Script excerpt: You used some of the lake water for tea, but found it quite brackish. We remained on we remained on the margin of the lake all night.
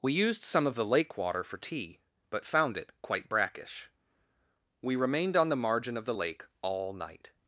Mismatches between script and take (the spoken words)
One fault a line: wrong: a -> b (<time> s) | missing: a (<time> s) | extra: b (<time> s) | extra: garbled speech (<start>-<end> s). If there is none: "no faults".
wrong: You -> We (0.0 s)
missing: we remained on (5.5 s)